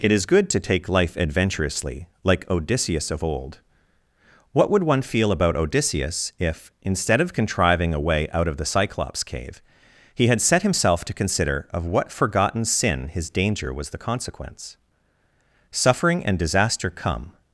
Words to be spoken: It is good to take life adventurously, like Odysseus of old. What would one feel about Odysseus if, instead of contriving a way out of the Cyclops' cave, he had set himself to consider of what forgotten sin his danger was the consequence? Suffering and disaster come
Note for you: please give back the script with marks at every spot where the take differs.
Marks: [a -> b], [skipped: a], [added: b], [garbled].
It is good to take life adventurously, like Odysseus of old. What would one feel about Odysseus if, instead of contriving a way out of the Cyclops' cave, he had set himself to consider of what forgotten sin his danger was the consequence? Suffering and disaster come